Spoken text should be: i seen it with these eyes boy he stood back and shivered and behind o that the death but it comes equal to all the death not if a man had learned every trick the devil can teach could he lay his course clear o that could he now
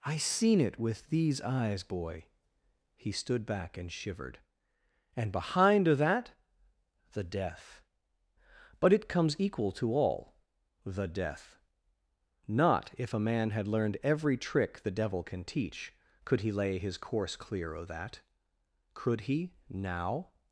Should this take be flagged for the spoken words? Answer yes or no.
no